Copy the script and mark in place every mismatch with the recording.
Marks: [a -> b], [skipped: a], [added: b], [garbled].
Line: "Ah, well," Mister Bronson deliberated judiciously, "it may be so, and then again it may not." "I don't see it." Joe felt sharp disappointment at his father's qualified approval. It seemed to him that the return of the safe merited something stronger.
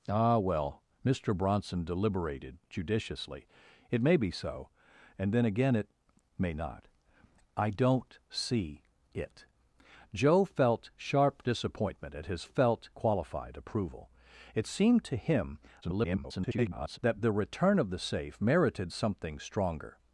"Ah, well," Mister Bronson deliberated judiciously, "it may be so, and then again it may not." "I don't see it." Joe felt sharp disappointment at his [father's -> felt] qualified approval. It seemed to him [garbled] that the return of the safe merited something stronger.